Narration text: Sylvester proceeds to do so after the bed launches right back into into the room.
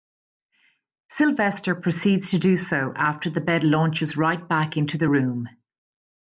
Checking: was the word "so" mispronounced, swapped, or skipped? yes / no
no